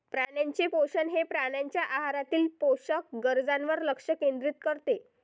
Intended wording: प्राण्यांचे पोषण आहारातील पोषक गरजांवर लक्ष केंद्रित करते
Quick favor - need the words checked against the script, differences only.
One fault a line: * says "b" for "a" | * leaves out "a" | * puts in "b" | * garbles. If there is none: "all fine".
* puts in "हे प्राण्यांच्या"